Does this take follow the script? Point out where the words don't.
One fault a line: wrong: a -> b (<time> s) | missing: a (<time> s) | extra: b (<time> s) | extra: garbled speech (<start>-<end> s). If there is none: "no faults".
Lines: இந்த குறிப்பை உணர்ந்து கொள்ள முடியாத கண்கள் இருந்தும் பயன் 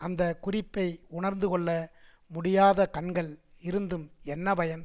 wrong: இந்த -> அந்த (0.0 s)
extra: என்ன (4.2 s)